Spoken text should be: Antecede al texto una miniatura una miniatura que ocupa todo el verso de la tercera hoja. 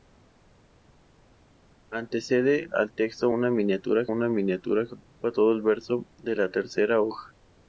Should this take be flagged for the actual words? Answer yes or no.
no